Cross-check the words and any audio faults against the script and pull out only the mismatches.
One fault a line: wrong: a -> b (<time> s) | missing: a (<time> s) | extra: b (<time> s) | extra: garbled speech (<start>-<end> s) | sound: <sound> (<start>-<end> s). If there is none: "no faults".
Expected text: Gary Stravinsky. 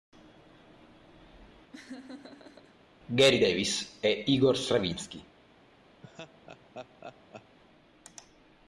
sound: laugh (1.7-2.8 s)
extra: Davis e Igor (3.4 s)
sound: laugh (6.0-7.6 s)